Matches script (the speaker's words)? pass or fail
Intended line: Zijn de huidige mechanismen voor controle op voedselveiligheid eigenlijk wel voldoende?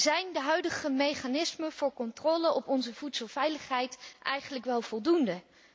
fail